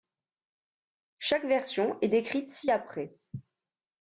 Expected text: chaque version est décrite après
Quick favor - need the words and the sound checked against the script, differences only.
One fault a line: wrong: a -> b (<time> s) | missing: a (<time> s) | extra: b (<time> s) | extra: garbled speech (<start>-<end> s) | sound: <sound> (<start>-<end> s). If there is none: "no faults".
extra: ci (2.5 s)